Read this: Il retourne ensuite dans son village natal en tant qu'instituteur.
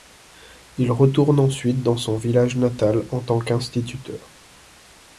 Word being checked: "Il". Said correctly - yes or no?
yes